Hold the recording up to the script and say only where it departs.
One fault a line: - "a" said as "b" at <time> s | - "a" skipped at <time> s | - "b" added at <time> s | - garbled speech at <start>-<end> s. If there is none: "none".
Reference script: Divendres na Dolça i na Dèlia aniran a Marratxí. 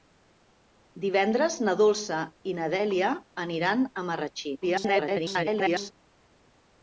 - garbled speech at 4.6-5.9 s